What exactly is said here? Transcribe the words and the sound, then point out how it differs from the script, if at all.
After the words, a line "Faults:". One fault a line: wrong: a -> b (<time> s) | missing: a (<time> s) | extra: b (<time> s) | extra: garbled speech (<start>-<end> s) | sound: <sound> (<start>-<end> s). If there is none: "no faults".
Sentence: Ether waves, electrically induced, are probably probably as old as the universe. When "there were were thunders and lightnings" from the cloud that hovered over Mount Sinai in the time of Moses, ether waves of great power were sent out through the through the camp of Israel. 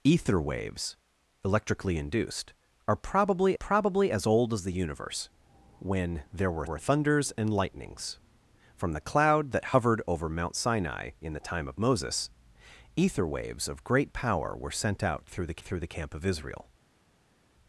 Ether waves, electrically induced, are probably probably as old as the universe. When "there were were thunders and lightnings" from the cloud that hovered over Mount Sinai in the time of Moses, ether waves of great power were sent out through the through the camp of Israel.
Faults:
no faults